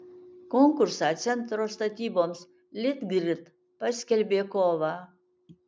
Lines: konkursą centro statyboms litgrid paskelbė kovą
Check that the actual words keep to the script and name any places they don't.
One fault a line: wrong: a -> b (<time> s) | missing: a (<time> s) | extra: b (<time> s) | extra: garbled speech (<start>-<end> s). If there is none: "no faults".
no faults